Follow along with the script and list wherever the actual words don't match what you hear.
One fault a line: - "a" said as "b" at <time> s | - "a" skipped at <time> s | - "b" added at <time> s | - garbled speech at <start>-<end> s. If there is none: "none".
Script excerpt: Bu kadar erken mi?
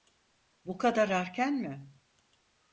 none